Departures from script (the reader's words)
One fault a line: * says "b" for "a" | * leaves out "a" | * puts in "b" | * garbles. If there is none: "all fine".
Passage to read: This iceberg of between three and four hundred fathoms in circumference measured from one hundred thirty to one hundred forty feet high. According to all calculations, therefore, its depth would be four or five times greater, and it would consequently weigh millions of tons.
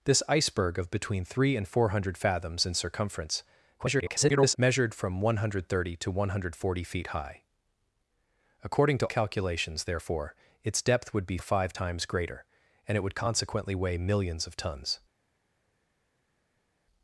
* garbles
* leaves out "all"
* leaves out "four"